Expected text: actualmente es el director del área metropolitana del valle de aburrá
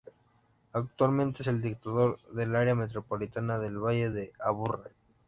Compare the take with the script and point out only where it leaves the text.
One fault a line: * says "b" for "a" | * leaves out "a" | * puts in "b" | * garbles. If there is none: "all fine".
all fine